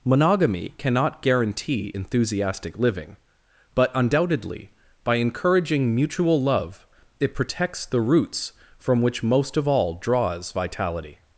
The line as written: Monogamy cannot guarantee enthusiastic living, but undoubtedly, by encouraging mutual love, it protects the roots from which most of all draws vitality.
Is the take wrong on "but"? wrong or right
right